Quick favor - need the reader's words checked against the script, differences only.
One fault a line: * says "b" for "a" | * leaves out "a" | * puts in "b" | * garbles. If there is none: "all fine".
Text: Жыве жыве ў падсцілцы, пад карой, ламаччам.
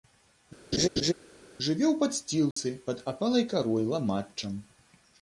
* leaves out "жыве"
* puts in "апалай"